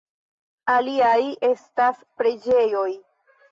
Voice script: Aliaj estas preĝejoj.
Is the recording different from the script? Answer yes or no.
no